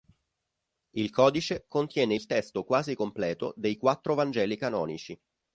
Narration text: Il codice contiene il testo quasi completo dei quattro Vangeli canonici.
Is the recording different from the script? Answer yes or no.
no